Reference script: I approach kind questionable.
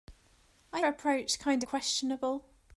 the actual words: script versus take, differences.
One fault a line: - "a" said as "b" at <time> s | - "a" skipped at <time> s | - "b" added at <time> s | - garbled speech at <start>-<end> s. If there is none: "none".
none